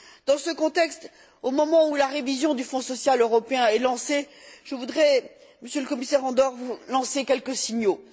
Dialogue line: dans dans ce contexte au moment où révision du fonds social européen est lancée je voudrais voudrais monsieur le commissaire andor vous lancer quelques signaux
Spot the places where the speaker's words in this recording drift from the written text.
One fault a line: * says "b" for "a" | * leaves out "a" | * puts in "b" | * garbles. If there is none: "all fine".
* leaves out "dans"
* puts in "la"
* leaves out "voudrais"